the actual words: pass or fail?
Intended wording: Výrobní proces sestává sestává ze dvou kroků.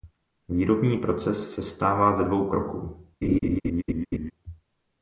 fail